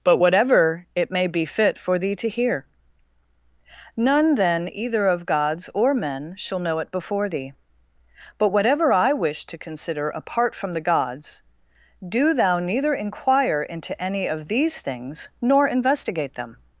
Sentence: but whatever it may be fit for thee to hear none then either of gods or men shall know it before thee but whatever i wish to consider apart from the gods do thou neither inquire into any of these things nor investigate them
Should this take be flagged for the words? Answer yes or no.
no